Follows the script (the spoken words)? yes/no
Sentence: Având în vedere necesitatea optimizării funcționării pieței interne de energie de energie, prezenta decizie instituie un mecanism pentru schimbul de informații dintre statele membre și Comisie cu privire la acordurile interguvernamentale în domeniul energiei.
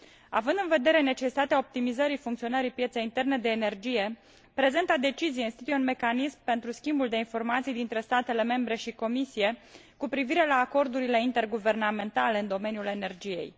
no